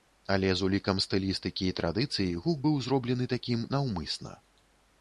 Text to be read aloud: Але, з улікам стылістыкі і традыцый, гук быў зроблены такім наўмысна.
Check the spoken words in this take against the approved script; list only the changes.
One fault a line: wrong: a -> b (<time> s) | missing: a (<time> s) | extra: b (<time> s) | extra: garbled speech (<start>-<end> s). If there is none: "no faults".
no faults